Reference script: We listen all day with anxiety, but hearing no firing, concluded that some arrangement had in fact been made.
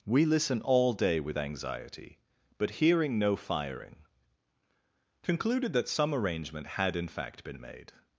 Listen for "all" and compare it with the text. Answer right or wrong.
right